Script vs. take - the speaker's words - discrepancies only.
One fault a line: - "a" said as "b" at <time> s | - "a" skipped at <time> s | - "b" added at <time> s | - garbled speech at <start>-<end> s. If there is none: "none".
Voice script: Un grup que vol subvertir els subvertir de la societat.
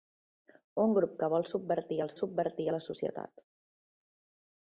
none